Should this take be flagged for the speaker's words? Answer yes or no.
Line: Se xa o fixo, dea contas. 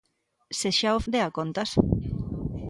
yes